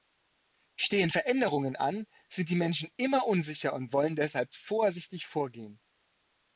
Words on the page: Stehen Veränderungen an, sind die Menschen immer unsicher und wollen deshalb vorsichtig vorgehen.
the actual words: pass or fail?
pass